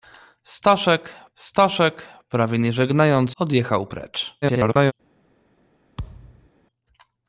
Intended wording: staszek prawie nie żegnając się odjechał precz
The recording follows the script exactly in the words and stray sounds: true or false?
false